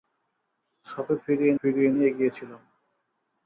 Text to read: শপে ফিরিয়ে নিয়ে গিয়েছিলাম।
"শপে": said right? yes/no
yes